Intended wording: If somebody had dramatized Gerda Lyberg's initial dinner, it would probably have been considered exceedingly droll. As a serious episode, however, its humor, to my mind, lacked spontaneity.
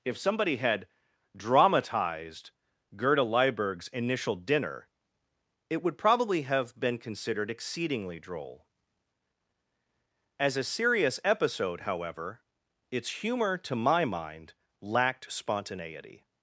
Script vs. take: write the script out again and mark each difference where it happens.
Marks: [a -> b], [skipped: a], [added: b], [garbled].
If somebody had dramatized Gerda Lyberg's initial dinner, it would probably have been considered exceedingly droll. As a serious episode, however, its humor, to my mind, lacked spontaneity.